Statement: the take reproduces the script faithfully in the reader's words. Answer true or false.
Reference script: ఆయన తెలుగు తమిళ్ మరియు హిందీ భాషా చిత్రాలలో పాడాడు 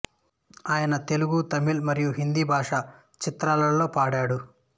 true